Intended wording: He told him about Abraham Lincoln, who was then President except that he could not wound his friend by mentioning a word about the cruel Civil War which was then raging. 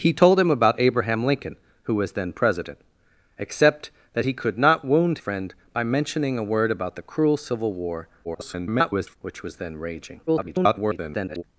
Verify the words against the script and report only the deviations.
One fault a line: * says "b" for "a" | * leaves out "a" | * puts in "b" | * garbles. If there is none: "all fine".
* leaves out "his"
* garbles
* garbles